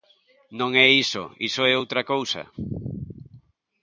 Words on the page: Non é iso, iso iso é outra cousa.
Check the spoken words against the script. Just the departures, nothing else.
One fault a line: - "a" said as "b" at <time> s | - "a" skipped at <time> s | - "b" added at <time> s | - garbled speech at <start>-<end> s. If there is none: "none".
- "iso" skipped at 1.6 s